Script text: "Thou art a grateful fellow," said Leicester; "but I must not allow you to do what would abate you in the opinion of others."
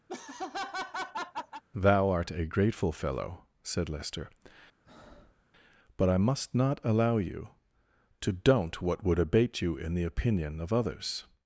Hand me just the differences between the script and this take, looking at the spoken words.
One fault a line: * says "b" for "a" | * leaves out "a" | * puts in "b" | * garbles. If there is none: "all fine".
* says "don't" for "do"